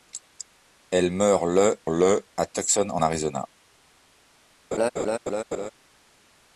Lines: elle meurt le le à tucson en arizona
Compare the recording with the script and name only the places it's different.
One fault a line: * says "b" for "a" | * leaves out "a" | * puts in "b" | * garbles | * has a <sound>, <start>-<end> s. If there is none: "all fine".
* has a laugh, 4.7-5.7 s